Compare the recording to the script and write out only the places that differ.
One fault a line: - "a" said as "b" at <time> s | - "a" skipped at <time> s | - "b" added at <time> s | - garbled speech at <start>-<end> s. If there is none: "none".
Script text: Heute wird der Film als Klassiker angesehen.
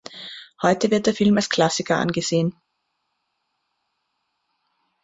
none